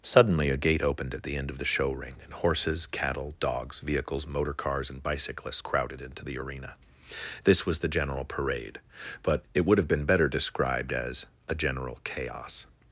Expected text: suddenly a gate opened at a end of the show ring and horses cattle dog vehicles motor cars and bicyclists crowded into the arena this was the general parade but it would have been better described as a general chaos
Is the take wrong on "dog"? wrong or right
wrong